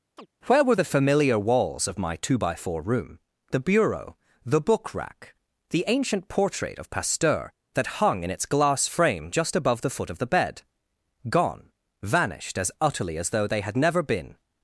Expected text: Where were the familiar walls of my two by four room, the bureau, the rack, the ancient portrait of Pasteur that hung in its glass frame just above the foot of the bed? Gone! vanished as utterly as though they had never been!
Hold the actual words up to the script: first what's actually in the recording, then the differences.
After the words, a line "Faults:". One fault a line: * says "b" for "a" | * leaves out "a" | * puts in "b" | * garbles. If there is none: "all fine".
Where were the familiar walls of my two by four room, the bureau, the book rack, the ancient portrait of Pasteur that hung in its glass frame just above the foot of the bed? Gone! vanished as utterly as though they had never been!
Faults:
* puts in "book"